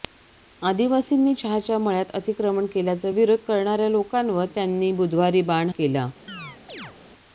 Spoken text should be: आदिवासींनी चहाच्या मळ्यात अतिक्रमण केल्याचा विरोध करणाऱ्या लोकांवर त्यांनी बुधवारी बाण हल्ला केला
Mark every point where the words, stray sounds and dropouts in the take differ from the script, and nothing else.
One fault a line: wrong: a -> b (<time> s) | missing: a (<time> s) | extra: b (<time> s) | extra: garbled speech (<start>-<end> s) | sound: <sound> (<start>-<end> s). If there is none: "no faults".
missing: हल्ला (5.7 s)
sound: chirp (6.3-7.0 s)